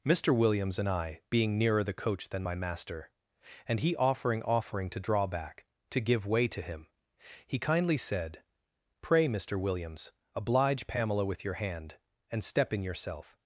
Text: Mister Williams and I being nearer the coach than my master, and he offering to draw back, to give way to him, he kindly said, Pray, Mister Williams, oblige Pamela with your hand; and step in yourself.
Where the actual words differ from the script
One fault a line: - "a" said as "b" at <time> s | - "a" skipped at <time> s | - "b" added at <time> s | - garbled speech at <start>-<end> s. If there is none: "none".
- "offering" added at 4.4 s